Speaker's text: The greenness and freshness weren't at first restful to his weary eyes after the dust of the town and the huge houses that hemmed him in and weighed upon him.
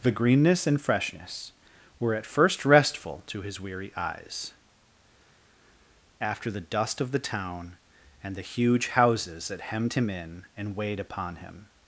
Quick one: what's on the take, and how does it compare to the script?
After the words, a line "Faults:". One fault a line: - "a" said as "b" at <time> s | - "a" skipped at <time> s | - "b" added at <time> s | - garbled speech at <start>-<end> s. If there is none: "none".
The greenness and freshness were at first restful to his weary eyes after the dust of the town and the huge houses that hemmed him in and weighed upon him.
Faults:
- "weren't" said as "were" at 2.0 s